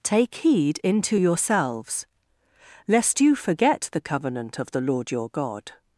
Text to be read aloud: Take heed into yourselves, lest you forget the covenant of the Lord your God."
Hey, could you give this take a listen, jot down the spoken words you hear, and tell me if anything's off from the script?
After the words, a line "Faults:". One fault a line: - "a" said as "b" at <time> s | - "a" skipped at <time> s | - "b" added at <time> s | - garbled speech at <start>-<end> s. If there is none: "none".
Take heed into yourselves, lest you forget the covenant of the Lord your God."
Faults:
none